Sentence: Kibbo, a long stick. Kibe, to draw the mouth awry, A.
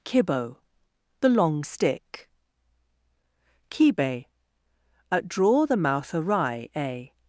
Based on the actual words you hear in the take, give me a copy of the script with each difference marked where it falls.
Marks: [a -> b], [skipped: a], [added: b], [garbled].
Kibbo, [a -> the] long stick. Kibe, [to -> at] draw the mouth awry, A.